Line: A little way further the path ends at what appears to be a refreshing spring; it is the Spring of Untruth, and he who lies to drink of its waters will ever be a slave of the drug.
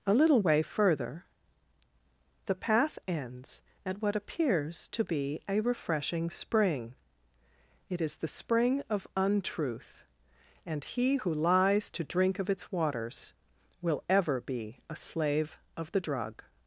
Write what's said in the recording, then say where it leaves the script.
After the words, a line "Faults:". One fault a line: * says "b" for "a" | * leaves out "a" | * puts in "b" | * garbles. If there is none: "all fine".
A little way further the path ends at what appears to be a refreshing spring; it is the Spring of Untruth, and he who lies to drink of its waters will ever be a slave of the drug.
Faults:
all fine